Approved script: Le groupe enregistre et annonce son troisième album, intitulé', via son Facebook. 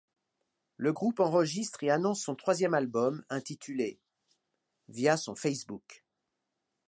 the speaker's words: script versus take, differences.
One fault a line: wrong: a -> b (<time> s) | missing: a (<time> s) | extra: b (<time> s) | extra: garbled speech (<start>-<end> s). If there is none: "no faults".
no faults